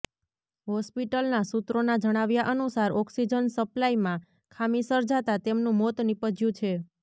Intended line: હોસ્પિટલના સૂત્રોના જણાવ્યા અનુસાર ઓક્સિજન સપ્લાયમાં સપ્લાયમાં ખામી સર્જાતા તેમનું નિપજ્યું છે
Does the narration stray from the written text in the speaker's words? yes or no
yes